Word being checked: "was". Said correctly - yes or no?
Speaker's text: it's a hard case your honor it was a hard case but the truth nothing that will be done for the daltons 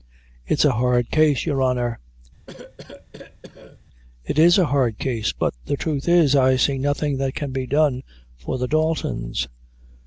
no